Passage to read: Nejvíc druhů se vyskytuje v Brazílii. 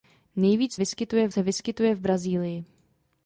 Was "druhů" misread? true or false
true